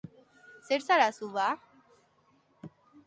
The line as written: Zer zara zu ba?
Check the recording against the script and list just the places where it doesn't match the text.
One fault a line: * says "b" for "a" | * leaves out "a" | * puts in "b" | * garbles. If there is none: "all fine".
all fine